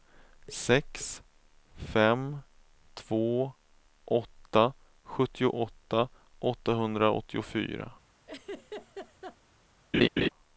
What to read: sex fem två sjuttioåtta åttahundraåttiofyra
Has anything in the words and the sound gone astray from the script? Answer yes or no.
yes